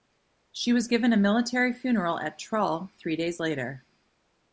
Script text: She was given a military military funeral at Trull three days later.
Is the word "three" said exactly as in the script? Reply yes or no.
yes